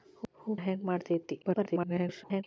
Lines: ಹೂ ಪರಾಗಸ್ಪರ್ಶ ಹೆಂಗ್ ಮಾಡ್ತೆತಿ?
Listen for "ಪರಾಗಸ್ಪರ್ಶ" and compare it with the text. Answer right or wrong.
wrong